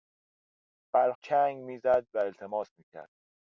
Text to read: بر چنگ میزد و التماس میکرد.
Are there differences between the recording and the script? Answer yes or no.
no